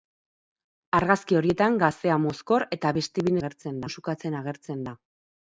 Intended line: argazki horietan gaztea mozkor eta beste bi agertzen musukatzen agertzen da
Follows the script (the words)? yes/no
yes